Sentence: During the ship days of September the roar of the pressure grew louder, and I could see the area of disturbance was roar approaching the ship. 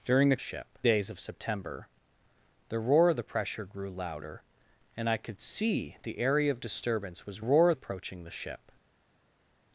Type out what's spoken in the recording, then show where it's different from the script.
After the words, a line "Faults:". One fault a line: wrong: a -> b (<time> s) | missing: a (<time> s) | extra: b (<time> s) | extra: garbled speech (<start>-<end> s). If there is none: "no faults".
During the ship days of September the roar of the pressure grew louder, and I could see the area of disturbance was roar approaching the ship.
Faults:
no faults